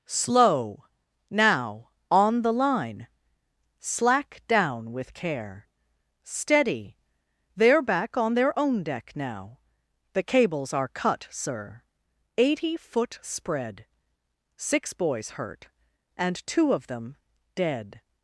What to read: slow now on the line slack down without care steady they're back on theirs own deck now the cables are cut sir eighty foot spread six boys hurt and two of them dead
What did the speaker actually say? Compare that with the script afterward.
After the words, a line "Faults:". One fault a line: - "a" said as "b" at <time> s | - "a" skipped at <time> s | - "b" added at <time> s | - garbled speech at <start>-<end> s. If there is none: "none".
slow now on the line slack down with care steady they're back on their own deck now the cables are cut sir eighty foot spread six boys hurt and two of them dead
Faults:
- "without" said as "with" at 4.9 s
- "theirs" said as "their" at 8.3 s